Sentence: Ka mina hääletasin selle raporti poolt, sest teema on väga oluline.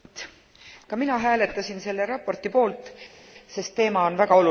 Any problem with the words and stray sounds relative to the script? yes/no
no